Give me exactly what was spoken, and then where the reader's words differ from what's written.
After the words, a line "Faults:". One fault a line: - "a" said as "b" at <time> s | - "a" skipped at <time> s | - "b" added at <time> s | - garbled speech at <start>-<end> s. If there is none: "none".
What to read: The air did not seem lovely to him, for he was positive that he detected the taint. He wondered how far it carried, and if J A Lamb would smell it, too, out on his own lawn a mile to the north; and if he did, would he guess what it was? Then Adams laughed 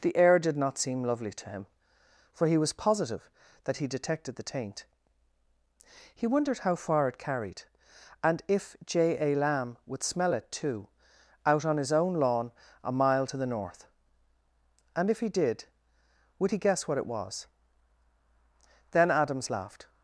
The air did not seem lovely to him, for he was positive that he detected the taint. He wondered how far it carried, and if J A Lamb would smell it, too, out on his own lawn a mile to the north; and if he did, would he guess what it was? Then Adams laughed
Faults:
none